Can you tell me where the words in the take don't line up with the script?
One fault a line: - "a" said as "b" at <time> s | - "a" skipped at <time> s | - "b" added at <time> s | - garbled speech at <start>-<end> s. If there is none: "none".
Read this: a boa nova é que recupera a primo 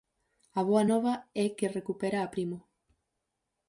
none